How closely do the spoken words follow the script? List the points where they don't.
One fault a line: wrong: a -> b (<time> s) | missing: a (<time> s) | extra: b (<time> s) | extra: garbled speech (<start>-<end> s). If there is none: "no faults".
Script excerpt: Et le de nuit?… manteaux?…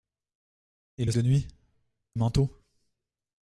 no faults